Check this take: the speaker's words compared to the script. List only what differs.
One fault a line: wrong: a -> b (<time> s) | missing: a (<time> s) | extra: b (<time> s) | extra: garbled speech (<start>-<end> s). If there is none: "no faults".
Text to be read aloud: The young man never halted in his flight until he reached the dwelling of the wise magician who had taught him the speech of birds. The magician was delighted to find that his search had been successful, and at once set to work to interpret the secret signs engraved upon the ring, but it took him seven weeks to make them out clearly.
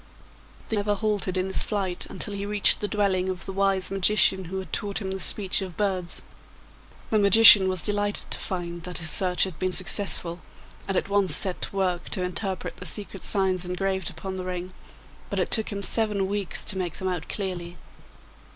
missing: young man (0.8 s)